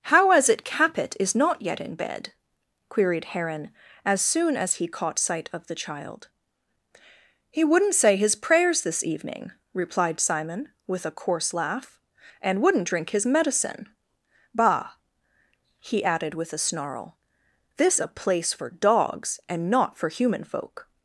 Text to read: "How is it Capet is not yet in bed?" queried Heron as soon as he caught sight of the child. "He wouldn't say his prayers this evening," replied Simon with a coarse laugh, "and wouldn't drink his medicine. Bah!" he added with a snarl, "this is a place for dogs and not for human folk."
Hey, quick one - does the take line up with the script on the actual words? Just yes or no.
no